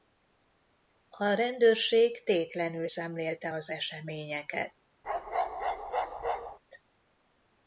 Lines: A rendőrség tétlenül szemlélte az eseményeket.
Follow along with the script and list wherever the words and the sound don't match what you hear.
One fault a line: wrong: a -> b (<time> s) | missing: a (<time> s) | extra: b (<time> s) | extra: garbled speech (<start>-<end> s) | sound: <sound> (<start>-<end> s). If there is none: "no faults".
sound: bark (5.0-6.6 s)